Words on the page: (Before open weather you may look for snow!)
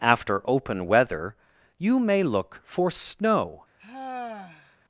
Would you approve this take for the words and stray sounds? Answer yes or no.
no